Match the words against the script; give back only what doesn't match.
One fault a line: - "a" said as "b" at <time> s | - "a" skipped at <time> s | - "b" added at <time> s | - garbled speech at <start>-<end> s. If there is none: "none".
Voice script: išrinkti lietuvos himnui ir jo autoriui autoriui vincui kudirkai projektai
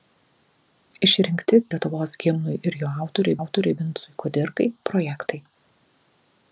none